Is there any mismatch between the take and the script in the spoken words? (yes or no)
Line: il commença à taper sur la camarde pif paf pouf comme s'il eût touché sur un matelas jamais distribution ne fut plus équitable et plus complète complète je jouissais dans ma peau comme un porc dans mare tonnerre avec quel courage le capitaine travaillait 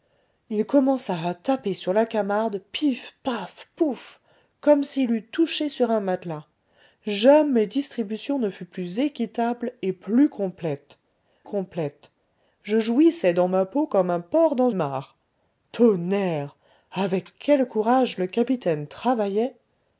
no